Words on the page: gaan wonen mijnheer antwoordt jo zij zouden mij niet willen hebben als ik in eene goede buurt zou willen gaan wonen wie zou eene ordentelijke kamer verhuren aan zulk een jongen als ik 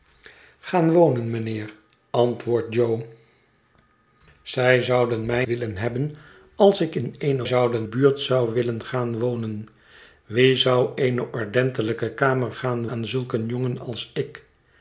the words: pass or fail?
fail